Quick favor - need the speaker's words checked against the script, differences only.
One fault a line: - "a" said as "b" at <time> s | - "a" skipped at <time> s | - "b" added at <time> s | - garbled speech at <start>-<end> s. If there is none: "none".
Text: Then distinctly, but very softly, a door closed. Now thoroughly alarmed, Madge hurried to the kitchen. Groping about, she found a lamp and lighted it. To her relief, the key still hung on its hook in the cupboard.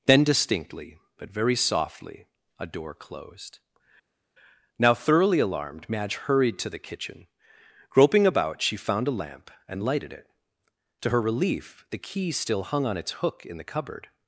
none